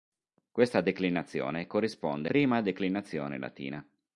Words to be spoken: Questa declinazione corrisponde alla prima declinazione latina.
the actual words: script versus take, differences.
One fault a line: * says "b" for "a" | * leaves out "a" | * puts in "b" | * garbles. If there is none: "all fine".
* leaves out "alla"